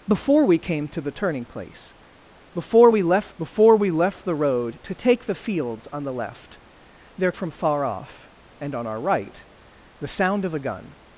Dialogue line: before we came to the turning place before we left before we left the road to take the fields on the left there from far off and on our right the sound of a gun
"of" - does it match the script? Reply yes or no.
yes